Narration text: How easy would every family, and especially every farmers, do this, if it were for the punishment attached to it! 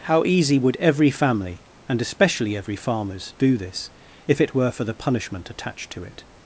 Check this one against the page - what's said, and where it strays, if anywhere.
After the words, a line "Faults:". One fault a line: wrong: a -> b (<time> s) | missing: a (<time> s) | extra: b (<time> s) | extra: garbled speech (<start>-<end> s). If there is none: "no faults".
How easy would every family, and especially every farmers, do this, if it were for the punishment attached to it!
Faults:
no faults